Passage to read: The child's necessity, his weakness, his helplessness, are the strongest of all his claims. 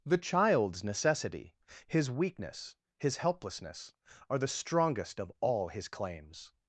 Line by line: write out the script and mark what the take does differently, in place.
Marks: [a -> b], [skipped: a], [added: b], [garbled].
The child's necessity, his weakness, his helplessness, are the strongest of all his claims.